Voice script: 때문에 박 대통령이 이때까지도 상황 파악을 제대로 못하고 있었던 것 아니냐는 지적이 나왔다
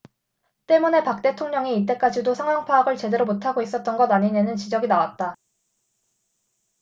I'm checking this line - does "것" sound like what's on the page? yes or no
yes